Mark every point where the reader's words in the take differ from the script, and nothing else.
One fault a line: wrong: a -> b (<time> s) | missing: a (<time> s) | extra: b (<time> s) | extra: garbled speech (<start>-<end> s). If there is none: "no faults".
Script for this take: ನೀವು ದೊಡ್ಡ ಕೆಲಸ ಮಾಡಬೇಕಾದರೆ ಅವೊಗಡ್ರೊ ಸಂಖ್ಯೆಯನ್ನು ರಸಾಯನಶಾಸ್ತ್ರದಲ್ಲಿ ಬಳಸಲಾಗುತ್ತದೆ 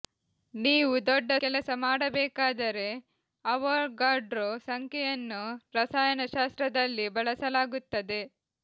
no faults